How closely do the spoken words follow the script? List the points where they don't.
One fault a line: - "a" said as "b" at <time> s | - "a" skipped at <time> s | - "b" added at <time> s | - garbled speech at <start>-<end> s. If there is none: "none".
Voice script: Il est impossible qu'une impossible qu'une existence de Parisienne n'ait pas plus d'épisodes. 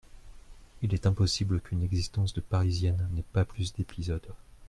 - "impossible qu'une" skipped at 1.8 s